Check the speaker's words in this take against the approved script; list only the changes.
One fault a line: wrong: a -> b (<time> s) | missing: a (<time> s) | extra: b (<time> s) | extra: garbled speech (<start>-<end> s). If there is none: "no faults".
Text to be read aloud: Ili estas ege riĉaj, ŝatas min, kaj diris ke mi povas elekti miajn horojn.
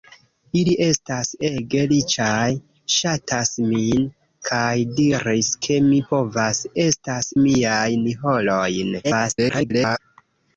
wrong: elekti -> estas (6.8 s)
extra: garbled speech (9.0-10.0 s)